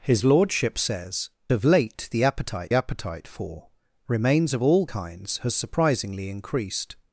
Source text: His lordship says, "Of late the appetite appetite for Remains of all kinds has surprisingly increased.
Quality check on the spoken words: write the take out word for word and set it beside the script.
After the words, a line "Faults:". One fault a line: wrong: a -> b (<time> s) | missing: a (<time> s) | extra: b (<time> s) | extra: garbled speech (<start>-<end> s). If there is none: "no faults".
His lordship says, "Of late the appetite appetite for Remains of all kinds has surprisingly increased.
Faults:
no faults